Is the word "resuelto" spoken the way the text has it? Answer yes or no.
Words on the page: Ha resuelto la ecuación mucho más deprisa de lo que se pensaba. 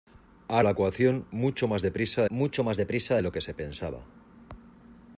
no